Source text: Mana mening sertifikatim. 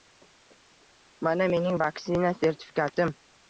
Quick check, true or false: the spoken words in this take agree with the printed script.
false